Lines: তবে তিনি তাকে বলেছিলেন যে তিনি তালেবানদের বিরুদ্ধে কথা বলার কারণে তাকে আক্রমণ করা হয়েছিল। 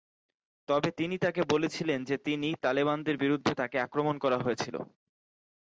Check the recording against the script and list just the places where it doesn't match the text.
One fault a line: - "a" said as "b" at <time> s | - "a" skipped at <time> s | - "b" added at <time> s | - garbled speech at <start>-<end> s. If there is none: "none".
- "কথা বলার কারণে" skipped at 3.5 s